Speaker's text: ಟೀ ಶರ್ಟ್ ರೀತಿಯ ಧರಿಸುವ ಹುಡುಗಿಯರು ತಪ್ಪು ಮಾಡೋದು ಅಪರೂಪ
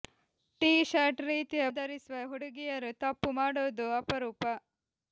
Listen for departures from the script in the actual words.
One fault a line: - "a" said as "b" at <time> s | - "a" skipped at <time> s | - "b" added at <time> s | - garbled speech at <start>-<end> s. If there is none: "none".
none